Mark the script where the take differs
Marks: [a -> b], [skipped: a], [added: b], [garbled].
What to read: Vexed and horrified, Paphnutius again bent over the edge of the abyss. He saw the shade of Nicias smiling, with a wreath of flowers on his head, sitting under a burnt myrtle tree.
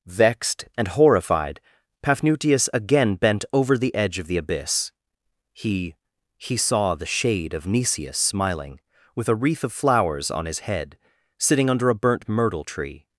Vexed and horrified, Paphnutius again bent over the edge of the abyss. He [added: He] saw the shade of Nicias smiling, with a wreath of flowers on his head, sitting under a burnt myrtle tree.